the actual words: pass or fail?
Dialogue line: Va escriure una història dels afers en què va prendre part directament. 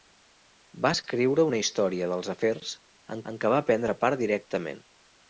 fail